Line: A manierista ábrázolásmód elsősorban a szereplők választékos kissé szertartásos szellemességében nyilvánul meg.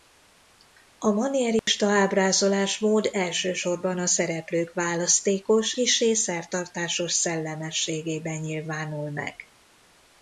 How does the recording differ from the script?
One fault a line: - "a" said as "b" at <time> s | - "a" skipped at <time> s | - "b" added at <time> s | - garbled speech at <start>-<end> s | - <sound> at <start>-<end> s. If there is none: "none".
- dropout at 1.6-1.7 s